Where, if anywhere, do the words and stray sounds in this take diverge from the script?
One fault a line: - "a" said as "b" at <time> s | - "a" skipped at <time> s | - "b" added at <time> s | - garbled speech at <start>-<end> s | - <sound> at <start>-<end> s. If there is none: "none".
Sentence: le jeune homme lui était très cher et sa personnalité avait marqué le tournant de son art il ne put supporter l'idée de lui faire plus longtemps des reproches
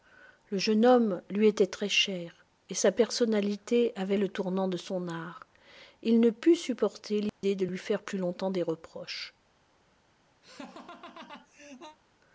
- "marqué" skipped at 4.2 s
- dropout at 7.3-7.4 s
- laugh at 10.4-12.0 s